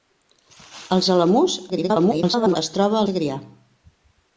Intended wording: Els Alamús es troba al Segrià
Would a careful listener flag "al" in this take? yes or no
yes